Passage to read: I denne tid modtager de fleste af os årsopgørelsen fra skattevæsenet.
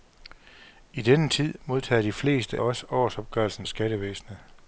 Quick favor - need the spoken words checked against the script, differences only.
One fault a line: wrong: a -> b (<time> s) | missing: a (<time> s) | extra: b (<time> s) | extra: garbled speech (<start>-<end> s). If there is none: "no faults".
missing: af (2.6 s)
missing: fra (3.7 s)